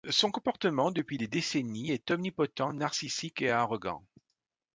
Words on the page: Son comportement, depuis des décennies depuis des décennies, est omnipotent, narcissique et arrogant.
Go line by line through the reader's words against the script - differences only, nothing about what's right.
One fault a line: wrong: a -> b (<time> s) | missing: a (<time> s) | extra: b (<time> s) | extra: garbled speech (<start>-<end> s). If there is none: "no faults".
missing: depuis des décennies (1.9 s)